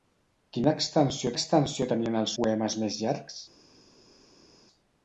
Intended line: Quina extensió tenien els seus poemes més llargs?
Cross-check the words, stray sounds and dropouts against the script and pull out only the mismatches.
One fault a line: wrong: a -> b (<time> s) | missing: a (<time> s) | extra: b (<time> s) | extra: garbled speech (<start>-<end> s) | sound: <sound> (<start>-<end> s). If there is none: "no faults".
extra: extensió (1.3 s)
missing: seus (2.4 s)